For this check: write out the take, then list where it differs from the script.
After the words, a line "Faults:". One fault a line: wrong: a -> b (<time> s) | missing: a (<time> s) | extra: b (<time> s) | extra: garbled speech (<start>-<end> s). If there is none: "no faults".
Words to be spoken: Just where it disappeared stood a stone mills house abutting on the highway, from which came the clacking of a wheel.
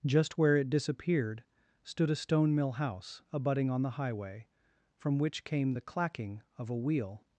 Just where it disappeared stood a stone mill house abutting on the highway, from which came the clacking of a wheel.
Faults:
wrong: mills -> mill (2.5 s)